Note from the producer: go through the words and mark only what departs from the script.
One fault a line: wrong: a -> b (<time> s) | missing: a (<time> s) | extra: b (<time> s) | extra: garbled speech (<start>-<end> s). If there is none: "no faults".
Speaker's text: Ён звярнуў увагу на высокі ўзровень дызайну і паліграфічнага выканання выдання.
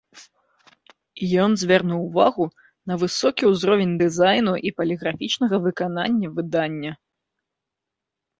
no faults